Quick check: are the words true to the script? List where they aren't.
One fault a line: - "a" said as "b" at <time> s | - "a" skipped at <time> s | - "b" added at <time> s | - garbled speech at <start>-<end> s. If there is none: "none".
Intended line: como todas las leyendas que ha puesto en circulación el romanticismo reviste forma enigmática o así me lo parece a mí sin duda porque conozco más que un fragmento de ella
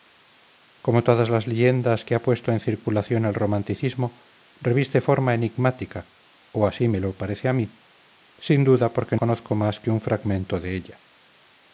none